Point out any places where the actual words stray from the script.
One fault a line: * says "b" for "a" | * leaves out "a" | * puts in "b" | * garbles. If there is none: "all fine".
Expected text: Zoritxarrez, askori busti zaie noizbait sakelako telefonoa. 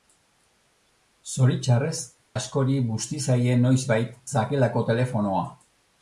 all fine